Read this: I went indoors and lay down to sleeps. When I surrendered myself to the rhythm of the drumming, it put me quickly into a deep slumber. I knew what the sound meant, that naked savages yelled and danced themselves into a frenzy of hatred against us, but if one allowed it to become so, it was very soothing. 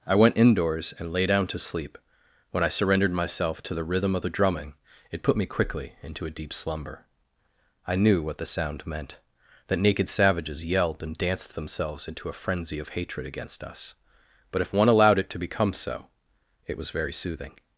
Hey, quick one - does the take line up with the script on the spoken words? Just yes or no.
no